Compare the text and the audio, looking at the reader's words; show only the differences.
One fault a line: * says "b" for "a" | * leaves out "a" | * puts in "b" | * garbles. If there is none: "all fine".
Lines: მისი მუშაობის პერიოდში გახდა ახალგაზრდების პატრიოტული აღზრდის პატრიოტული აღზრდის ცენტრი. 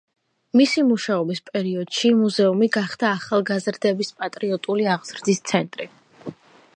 * puts in "მუზეუმი"
* leaves out "პატრიოტული აღზრდის"